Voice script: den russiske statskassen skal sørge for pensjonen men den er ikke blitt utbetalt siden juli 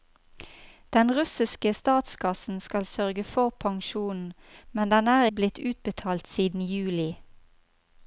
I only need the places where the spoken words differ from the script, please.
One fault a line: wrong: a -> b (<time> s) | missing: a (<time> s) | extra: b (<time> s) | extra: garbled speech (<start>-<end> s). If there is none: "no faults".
missing: ikke (5.2 s)